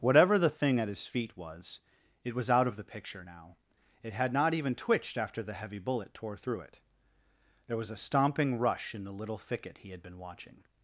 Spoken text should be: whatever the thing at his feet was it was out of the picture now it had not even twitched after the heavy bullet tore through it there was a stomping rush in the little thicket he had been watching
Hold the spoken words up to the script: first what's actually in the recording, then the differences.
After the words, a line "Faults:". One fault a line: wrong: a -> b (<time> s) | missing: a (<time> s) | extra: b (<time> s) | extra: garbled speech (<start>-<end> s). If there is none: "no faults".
whatever the thing at his feet was it was out of the picture now it had not even twitched after the heavy bullet tore through it there was a stomping rush in the little thicket he had been watching
Faults:
no faults